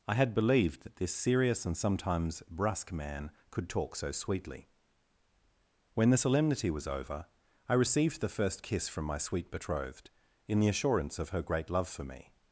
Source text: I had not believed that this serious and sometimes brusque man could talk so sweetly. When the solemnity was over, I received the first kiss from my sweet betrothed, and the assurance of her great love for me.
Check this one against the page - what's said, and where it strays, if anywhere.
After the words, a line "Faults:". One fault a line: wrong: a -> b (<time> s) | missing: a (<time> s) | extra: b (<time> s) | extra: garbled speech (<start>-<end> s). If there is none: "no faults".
I had believed that this serious and sometimes brusque man could talk so sweetly. When the solemnity was over, I received the first kiss from my sweet betrothed, in the assurance of her great love for me.
Faults:
missing: not (0.3 s)
wrong: and -> in (10.5 s)